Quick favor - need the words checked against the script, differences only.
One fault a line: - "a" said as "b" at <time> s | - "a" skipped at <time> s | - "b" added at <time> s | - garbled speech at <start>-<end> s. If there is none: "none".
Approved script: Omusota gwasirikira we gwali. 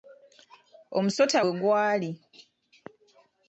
- "gwasirikira" skipped at 1.4 s